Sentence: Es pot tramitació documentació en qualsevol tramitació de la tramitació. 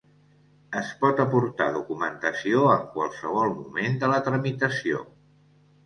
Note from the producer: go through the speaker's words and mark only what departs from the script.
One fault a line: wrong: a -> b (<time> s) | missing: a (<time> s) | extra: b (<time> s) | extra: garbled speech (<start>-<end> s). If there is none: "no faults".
wrong: tramitació -> aportar (1.2 s)
wrong: tramitació -> moment (3.6 s)